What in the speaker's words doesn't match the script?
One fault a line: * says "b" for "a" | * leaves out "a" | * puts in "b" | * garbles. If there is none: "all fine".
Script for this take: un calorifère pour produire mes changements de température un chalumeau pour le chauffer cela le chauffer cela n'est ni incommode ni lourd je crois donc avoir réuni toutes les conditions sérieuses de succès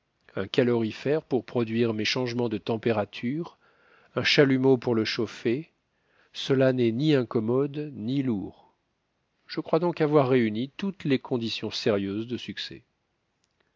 * leaves out "le chauffer cela"